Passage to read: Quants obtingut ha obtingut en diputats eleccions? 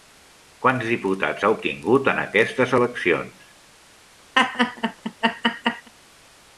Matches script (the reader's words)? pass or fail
fail